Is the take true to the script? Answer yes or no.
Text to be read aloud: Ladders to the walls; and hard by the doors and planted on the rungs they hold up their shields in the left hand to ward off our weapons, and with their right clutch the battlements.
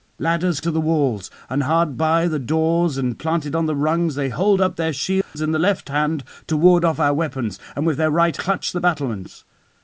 yes